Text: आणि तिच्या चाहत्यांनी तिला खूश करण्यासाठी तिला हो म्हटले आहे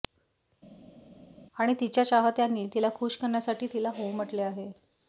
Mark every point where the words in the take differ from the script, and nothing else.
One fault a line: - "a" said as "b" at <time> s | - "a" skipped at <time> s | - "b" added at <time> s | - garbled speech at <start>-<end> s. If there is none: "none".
none